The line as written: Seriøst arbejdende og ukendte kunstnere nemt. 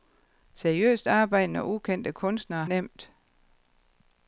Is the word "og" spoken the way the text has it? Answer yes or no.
yes